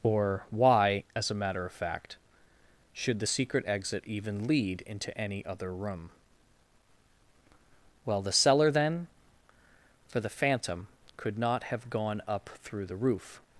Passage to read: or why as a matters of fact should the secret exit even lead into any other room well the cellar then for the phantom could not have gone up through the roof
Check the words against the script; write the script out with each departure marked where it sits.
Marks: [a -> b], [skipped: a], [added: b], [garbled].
or why as a [matters -> matter] of fact should the secret exit even lead into any other room well the cellar then for the phantom could not have gone up through the roof